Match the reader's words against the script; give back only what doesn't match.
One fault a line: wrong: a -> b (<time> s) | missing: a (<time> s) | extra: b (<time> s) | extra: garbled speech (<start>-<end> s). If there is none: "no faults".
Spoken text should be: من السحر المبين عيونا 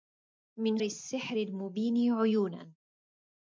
no faults